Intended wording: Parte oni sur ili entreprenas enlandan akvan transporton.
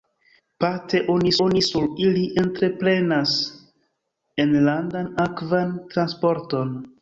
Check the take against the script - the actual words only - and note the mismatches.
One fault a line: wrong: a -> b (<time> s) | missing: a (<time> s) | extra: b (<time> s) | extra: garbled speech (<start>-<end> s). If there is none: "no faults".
extra: oni (1.5 s)